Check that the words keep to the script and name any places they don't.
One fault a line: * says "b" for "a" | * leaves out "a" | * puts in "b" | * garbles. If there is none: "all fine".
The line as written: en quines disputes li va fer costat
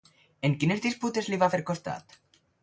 all fine